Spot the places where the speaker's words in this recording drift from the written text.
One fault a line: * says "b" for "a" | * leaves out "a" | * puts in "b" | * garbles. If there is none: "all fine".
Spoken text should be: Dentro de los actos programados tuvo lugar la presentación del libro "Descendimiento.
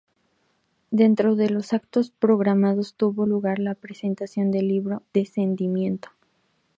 all fine